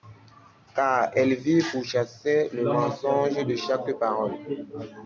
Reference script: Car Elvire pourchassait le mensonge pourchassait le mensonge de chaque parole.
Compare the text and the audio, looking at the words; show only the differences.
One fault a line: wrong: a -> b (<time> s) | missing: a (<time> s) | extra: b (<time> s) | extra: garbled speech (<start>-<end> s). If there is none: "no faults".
missing: pourchassait le mensonge (3.4 s)